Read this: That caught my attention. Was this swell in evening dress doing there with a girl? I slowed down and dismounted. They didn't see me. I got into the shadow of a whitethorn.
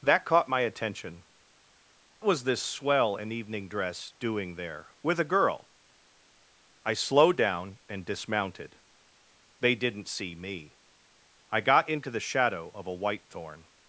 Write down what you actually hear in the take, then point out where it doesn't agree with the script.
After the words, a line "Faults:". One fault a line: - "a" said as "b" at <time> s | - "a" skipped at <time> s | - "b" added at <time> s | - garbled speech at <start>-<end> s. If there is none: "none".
That caught my attention. Was this swell in evening dress doing there with a girl? I slowed down and dismounted. They didn't see me. I got into the shadow of a whitethorn.
Faults:
none